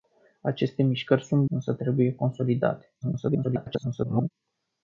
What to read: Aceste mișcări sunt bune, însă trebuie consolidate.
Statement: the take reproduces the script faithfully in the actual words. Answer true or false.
false